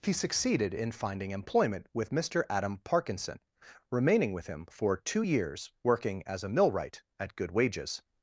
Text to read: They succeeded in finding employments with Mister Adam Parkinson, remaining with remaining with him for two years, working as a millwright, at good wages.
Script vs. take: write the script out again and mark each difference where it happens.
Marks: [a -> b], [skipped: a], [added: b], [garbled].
[They -> He] succeeded in finding [employments -> employment] with Mister Adam Parkinson, remaining with [skipped: remaining with] him for two years, working as a millwright, at good wages.